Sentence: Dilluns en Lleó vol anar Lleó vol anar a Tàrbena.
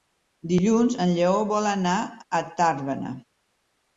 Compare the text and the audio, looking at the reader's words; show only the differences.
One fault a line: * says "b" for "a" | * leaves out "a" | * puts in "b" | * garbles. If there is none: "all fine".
* leaves out "Lleó vol anar"